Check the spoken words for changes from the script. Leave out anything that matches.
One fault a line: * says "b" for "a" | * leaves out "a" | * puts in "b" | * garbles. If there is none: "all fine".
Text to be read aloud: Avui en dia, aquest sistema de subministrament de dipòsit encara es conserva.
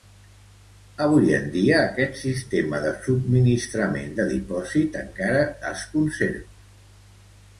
all fine